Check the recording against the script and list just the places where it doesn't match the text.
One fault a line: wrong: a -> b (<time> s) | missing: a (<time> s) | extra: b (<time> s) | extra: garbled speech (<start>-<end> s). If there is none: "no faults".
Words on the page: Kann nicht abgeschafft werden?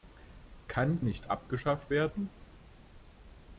no faults